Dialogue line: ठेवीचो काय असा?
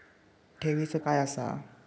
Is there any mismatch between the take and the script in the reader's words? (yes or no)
no